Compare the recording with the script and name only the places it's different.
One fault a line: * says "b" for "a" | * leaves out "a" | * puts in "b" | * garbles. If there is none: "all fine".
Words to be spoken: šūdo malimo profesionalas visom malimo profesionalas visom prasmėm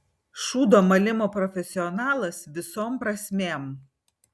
* leaves out "malimo profesionalas visom"